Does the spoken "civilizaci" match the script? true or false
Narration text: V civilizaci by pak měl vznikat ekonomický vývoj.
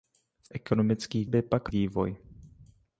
false